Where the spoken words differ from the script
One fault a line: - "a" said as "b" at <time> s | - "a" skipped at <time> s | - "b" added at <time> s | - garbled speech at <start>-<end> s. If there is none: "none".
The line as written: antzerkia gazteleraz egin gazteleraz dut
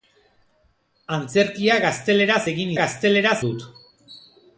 none